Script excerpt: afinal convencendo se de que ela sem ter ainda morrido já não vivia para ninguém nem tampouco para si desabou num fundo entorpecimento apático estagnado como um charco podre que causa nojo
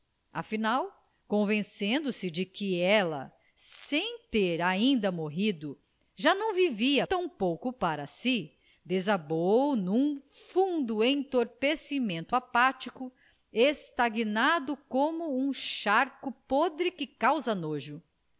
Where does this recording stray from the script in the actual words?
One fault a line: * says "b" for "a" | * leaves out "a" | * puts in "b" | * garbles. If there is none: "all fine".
* leaves out "para ninguém nem"